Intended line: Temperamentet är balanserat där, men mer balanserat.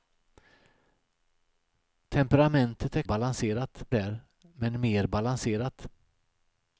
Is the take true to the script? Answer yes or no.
yes